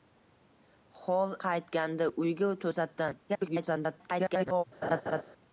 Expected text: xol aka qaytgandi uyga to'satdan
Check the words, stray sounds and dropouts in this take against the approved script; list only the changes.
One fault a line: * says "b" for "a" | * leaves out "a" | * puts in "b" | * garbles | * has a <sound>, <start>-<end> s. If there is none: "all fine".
* leaves out "aka"
* garbles
* has a laugh, 4.8-5.2 s